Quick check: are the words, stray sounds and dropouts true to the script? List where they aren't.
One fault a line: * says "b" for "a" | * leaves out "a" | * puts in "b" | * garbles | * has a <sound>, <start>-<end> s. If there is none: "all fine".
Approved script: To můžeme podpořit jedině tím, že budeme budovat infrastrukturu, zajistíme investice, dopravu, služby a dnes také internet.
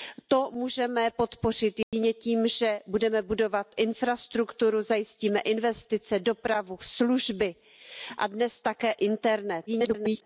* has a dropout, 1.8-1.9 s
* garbles